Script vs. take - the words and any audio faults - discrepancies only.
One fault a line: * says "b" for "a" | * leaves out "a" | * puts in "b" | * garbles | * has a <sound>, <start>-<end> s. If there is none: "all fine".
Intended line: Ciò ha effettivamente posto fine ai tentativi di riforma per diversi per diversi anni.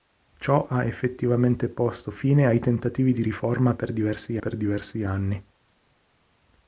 all fine